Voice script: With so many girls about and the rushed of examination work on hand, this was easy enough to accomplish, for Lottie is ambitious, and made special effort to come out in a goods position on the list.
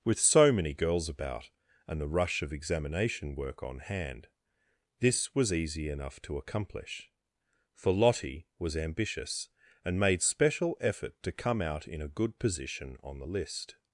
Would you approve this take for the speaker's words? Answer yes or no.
no